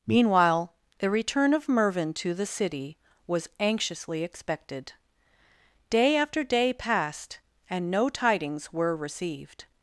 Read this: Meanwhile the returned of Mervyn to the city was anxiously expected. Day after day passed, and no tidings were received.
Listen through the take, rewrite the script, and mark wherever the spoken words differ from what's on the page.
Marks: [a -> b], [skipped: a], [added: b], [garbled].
Meanwhile the [returned -> return] of Mervyn to the city was anxiously expected. Day after day passed, and no tidings were received.